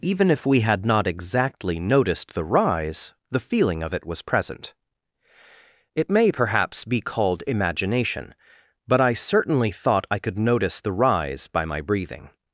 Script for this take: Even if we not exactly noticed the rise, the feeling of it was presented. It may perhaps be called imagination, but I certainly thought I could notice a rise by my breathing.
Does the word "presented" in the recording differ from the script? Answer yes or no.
yes